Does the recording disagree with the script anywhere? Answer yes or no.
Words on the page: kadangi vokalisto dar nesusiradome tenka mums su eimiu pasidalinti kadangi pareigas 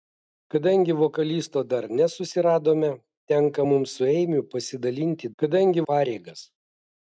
no